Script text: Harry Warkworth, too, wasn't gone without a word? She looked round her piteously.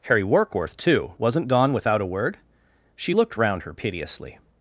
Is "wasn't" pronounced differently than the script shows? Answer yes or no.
no